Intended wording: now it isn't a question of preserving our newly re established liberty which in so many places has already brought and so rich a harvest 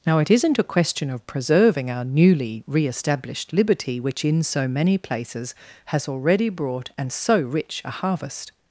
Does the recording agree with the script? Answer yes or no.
yes